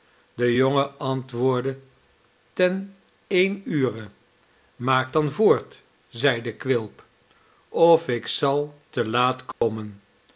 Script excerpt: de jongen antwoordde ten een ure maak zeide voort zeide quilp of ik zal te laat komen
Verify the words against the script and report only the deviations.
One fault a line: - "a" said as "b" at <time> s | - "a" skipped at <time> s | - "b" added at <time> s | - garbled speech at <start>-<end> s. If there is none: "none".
- "zeide" said as "dan" at 5.1 s